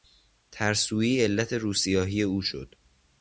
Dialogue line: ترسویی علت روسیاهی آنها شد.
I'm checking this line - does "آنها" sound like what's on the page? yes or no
no